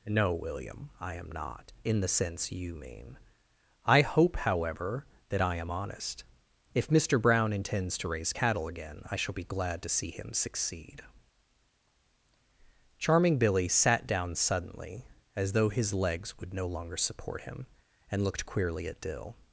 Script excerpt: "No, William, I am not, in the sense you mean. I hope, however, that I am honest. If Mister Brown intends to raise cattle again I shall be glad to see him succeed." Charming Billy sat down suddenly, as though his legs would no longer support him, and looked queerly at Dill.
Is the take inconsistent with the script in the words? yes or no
no